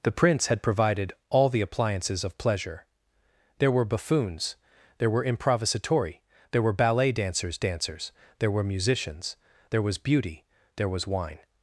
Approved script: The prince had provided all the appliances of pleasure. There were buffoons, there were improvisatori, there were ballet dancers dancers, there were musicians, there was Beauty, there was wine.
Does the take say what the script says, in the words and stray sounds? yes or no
yes